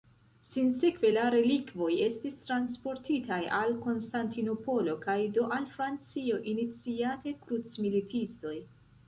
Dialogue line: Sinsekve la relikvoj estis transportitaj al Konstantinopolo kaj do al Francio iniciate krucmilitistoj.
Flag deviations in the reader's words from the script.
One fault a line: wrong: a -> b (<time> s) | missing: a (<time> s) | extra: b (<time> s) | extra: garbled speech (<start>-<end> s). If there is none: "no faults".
no faults